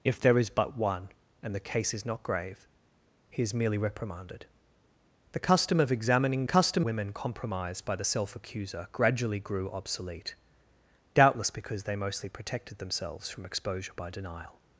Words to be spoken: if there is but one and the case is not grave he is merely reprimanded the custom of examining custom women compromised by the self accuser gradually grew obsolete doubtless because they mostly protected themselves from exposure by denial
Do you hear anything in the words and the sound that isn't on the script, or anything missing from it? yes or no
no